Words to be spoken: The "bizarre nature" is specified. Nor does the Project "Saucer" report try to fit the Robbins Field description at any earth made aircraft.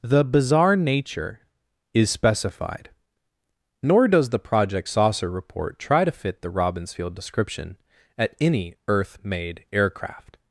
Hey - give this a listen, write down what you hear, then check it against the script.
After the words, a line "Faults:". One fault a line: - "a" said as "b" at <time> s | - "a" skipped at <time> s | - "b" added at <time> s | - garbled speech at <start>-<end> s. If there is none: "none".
The "bizarre nature" is specified. Nor does the Project "Saucer" report try to fit the Robbins Field description at any earth made aircraft.
Faults:
none